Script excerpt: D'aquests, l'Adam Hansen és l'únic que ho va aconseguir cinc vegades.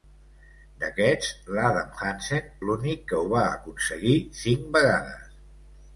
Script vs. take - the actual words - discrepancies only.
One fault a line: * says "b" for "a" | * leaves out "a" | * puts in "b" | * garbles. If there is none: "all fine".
* leaves out "és"